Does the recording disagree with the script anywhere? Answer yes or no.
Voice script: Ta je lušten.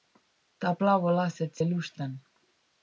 yes